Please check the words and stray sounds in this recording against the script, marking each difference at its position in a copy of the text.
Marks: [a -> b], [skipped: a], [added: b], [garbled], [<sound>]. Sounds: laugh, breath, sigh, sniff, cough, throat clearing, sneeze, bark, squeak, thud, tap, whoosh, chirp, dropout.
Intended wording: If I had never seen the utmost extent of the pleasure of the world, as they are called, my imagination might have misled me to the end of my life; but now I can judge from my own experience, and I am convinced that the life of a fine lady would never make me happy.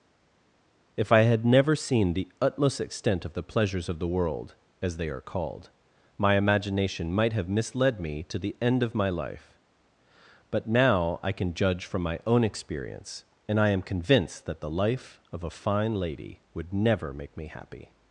If I had never seen the utmost extent of the [pleasure -> pleasures] of the world, as they are called, my imagination might have misled me to the end of my life; but now I can judge from my own experience, and I am convinced that the life of a fine lady would never make me happy.